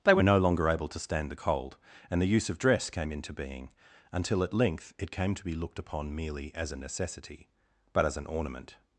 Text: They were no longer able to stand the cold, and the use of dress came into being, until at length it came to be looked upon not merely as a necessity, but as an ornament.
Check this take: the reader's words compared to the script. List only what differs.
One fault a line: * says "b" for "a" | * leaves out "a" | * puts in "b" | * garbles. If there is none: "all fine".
* leaves out "not"